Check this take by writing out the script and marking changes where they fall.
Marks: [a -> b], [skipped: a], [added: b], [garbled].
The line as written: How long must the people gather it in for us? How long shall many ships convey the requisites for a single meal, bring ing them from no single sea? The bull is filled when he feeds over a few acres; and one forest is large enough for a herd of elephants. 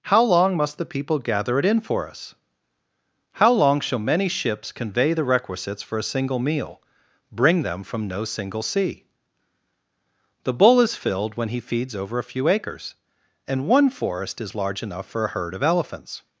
How long must the people gather it in for us? How long shall many ships convey the requisites for a single meal, bring [skipped: ing] them from no single sea? The bull is filled when he feeds over a few acres; and one forest is large enough for a herd of elephants.